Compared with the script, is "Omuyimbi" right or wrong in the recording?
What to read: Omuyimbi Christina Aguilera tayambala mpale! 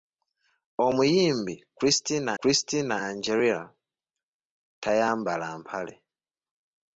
right